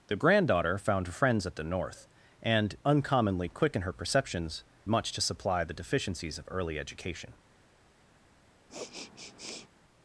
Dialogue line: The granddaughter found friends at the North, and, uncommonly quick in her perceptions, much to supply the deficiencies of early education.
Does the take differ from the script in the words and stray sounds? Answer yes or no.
yes